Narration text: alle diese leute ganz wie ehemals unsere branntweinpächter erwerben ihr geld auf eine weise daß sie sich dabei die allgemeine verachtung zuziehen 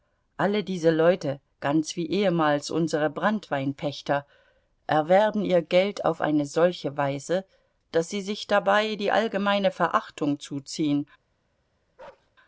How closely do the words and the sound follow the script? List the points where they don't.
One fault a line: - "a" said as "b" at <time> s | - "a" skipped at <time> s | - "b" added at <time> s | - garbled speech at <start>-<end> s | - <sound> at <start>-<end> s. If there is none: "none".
- "solche" added at 6.5 s
- bark at 12.0-12.3 s